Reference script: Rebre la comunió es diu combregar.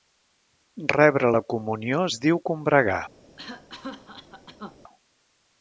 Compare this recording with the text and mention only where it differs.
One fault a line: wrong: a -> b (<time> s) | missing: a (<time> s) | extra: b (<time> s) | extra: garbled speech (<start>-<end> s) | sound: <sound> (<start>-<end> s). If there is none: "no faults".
sound: cough (3.4-4.8 s)